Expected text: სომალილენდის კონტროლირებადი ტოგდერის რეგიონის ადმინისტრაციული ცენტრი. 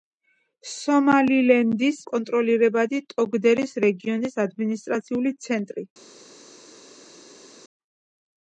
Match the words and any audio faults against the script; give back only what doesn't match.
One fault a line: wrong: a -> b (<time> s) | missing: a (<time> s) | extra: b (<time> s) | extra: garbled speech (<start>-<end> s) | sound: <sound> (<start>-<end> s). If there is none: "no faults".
no faults